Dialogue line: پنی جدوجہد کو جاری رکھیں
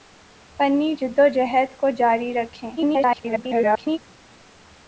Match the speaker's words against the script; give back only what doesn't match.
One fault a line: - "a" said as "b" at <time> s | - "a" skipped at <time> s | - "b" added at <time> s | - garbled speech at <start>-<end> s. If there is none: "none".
- garbled speech at 2.8-4.0 s